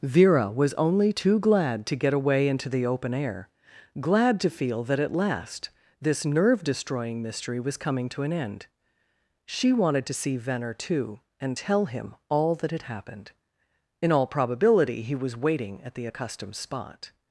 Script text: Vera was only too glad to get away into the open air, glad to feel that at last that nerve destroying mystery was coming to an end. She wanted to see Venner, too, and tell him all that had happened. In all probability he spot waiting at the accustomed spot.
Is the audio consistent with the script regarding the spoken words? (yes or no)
no